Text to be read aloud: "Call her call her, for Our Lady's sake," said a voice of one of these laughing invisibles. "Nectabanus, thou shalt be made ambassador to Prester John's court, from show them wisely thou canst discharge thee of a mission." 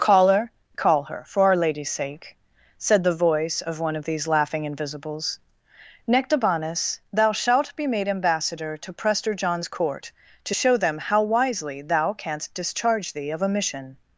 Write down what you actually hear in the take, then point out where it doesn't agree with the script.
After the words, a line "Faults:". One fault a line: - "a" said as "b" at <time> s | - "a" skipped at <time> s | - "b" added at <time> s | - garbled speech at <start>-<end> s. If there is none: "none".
"Call her call her, for Our Lady's sake," said the voice of one of these laughing invisibles. "Nectabanus, thou shalt be made ambassador to Prester John's court, to show them how wisely thou canst discharge thee of a mission."
Faults:
- "a" said as "the" at 3.0 s
- "from" said as "to" at 10.4 s
- "how" added at 11.0 s